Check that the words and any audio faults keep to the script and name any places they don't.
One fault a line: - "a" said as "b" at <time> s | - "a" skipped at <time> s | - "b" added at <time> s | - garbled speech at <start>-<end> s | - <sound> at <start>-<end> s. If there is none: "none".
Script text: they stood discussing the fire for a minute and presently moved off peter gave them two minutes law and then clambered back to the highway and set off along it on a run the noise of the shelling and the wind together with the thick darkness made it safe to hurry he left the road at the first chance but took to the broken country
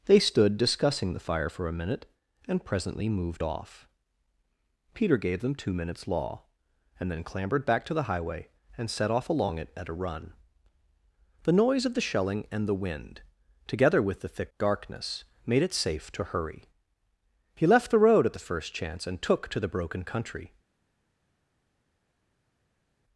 - "on" said as "at" at 9.7 s
- "but" said as "and" at 19.1 s